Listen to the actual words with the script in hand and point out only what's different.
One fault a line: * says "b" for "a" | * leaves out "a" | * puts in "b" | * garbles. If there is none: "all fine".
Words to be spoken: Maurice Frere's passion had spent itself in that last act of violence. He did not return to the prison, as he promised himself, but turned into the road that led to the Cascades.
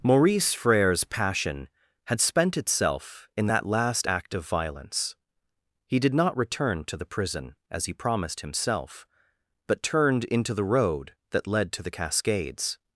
all fine